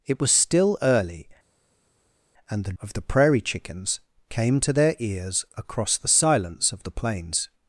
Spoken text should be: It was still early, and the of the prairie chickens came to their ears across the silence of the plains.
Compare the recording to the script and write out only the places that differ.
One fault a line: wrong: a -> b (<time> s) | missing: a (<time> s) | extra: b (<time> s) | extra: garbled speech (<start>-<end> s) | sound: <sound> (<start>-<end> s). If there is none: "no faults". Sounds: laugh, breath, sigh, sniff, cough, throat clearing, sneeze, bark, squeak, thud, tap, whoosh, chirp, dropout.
no faults